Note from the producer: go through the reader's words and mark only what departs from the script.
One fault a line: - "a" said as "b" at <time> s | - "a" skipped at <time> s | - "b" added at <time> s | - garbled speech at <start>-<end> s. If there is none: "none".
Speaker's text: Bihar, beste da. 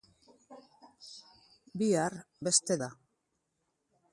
none